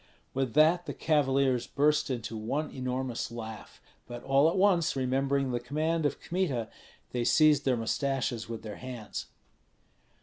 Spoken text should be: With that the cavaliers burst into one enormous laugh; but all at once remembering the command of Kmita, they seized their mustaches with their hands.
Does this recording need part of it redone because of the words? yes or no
no